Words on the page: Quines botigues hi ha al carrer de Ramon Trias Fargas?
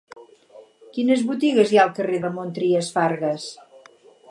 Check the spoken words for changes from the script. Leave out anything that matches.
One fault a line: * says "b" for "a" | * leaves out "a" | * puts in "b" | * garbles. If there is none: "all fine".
* leaves out "de"